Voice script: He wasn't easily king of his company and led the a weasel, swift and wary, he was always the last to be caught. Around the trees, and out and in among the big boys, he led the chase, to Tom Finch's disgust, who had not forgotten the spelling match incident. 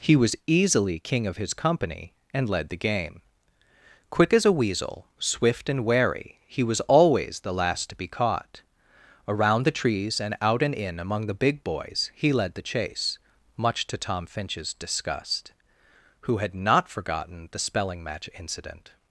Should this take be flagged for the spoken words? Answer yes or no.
yes